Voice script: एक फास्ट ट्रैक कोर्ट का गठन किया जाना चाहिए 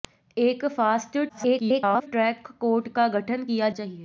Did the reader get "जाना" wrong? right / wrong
wrong